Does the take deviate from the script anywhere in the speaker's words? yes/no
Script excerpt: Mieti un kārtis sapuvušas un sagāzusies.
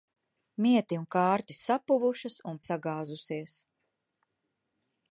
no